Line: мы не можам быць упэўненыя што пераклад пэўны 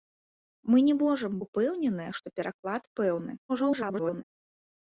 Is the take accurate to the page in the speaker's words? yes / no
no